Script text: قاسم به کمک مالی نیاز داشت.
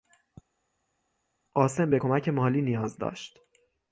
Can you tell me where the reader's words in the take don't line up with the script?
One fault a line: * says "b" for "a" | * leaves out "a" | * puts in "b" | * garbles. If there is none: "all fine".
all fine